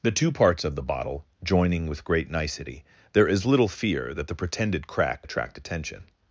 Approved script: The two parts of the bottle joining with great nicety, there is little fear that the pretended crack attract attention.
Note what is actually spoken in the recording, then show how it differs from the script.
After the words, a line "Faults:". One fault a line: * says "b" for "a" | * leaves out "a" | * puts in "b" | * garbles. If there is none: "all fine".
The two parts of the bottle joining with great nicety, there is little fear that the pretended crack attract attention.
Faults:
all fine